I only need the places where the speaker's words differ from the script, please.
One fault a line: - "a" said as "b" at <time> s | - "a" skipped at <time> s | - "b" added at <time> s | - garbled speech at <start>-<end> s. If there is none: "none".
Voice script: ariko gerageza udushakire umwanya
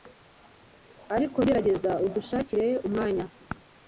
none